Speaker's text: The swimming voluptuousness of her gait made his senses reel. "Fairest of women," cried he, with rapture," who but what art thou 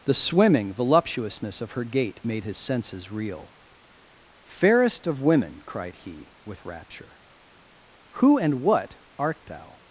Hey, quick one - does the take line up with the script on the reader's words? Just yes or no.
no